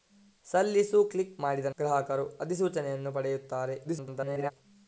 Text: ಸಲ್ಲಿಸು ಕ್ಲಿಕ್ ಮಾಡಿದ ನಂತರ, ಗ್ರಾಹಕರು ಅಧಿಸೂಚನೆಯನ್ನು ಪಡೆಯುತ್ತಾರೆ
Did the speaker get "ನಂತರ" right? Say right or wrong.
wrong